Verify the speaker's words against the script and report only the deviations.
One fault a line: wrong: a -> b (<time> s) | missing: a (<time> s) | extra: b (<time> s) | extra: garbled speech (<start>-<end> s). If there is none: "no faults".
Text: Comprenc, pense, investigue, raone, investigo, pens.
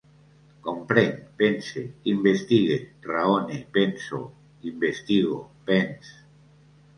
extra: penso (3.8 s)